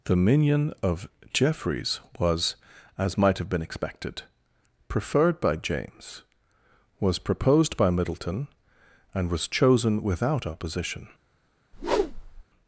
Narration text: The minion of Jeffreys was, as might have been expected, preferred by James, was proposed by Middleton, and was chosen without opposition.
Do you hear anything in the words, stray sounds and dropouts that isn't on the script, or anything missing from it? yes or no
yes